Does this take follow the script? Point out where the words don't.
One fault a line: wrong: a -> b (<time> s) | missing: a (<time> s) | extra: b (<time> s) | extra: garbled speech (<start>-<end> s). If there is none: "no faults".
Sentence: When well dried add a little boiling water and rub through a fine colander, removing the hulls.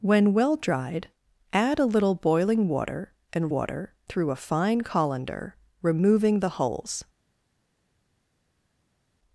wrong: rub -> water (3.5 s)